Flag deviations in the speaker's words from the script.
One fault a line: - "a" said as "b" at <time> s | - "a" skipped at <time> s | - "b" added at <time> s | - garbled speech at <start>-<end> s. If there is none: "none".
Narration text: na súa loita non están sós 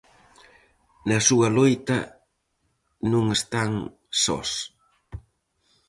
none